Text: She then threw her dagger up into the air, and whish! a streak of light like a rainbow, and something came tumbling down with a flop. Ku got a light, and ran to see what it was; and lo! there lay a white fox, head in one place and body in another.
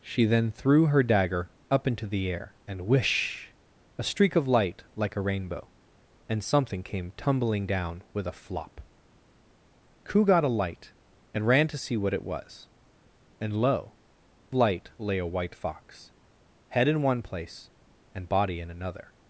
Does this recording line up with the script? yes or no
no